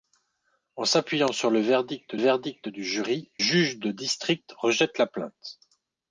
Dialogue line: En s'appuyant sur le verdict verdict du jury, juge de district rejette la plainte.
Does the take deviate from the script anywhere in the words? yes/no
no